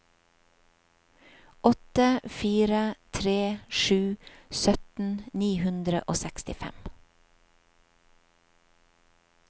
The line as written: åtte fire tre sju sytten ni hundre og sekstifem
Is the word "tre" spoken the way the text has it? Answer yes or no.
yes